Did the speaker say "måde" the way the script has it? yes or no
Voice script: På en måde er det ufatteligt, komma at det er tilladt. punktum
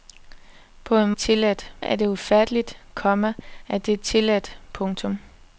no